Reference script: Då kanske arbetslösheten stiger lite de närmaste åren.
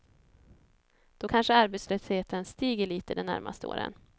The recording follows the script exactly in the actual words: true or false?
true